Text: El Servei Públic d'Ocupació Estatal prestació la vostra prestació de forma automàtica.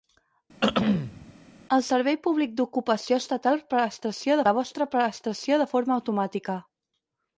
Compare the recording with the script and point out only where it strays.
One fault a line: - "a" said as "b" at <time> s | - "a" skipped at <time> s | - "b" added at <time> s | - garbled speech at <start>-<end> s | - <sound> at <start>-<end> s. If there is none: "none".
- throat clearing at 0.6-1.3 s